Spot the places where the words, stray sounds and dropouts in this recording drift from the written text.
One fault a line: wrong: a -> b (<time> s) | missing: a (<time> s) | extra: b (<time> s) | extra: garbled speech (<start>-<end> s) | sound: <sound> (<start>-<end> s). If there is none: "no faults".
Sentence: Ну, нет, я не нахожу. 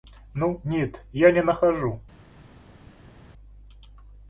no faults